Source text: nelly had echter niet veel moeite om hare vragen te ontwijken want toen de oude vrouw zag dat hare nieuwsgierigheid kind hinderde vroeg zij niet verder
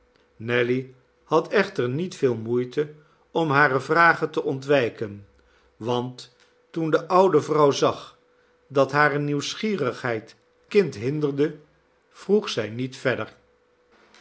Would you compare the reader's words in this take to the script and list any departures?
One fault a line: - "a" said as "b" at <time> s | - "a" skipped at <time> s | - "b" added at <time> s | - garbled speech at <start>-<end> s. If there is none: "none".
none